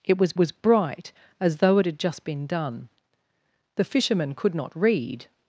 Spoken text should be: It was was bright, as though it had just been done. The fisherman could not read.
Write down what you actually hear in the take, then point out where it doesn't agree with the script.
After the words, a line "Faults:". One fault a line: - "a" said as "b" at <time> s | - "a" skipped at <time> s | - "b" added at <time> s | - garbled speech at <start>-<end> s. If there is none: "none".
It was was bright, as though it had just been done. The fisherman could not read.
Faults:
none